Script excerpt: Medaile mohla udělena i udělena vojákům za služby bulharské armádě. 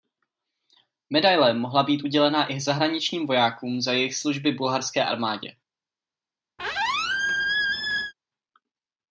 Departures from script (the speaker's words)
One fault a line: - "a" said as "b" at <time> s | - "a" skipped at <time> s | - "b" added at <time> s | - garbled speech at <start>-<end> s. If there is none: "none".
- "být" added at 1.8 s
- "udělena" said as "zahraničním" at 2.6 s
- "jejich" added at 3.9 s